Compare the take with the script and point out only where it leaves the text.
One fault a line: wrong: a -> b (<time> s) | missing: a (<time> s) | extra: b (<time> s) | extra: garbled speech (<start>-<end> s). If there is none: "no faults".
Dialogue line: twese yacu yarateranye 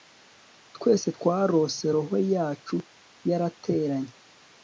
extra: twarose roho (1.1 s)